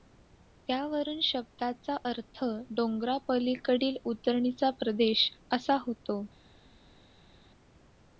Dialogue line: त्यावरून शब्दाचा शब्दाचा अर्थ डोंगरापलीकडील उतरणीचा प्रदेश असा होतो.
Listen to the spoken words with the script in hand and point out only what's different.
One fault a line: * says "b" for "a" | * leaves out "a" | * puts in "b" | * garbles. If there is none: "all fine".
* leaves out "शब्दाचा"